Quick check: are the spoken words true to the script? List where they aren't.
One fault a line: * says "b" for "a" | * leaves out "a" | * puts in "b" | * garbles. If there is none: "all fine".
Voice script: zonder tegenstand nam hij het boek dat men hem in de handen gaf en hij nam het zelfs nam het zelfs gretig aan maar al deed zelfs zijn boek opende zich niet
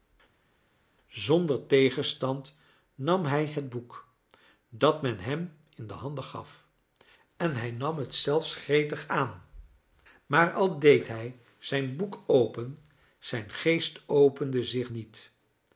* leaves out "nam het zelfs"
* says "hij" for "zelfs"
* puts in "open zijn geest"